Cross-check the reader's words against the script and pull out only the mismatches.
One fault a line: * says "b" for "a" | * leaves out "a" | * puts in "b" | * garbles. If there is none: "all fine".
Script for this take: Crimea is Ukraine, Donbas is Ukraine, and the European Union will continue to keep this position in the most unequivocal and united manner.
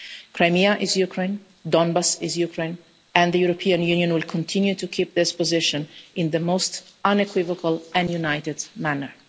all fine